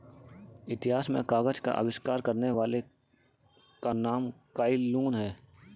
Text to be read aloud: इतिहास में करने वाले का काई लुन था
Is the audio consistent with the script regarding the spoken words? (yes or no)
no